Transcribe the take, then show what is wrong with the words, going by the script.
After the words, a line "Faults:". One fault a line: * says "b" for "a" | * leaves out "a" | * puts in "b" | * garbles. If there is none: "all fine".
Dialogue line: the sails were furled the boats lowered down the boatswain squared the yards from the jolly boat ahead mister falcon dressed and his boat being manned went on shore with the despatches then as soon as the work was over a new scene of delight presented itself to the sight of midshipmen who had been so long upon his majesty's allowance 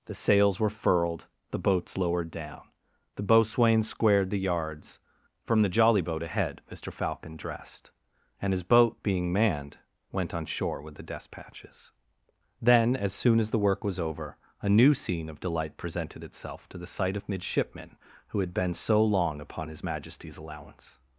the sails were furled the boats lowered down the boatswain squared the yards from the jolly boat ahead mister falcon dressed and his boat being manned went on shore with the despatches then as soon as the work was over a new scene of delight presented itself to the sight of midshipmen who had been so long upon his majesty's allowance
Faults:
all fine